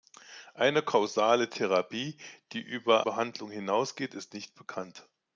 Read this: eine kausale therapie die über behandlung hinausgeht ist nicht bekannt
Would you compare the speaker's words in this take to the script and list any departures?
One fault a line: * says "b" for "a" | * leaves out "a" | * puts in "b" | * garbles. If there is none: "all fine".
all fine